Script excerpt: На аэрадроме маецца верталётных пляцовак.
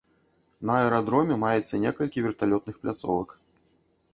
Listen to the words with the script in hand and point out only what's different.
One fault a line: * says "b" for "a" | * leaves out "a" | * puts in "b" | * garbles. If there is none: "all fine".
* puts in "некалькі"